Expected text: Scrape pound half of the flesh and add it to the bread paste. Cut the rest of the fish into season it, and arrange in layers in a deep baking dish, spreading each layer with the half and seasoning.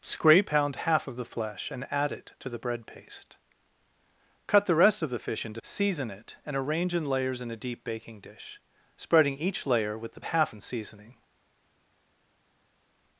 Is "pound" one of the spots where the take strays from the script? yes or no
no